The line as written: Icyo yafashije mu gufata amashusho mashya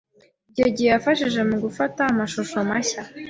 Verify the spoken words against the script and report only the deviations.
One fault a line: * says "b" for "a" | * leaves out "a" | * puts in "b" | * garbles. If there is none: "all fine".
* puts in "gihe"